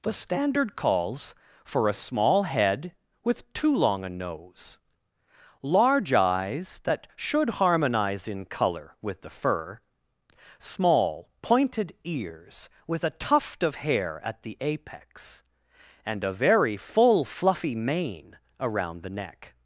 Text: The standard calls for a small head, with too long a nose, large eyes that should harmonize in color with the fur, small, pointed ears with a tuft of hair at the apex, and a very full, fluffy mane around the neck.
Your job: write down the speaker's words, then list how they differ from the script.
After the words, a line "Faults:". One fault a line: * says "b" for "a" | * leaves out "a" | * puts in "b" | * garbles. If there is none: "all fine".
The standard calls for a small head, with too long a nose, large eyes that should harmonize in color with the fur, small, pointed ears with a tuft of hair at the apex, and a very full, fluffy mane around the neck.
Faults:
all fine